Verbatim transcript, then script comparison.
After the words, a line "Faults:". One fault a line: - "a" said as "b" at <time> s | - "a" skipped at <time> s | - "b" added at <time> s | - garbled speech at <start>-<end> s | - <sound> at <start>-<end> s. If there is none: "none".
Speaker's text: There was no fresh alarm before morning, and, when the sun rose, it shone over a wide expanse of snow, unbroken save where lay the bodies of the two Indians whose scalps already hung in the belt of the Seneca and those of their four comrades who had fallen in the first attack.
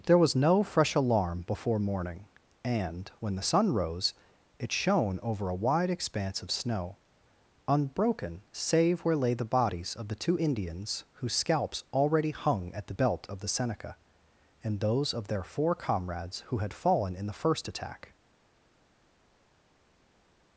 There was no fresh alarm before morning, and, when the sun rose, it shone over a wide expanse of snow, unbroken save where lay the bodies of the two Indians whose scalps already hung at the belt of the Seneca and those of their four comrades who had fallen in the first attack.
Faults:
- "in" said as "at" at 12.7 s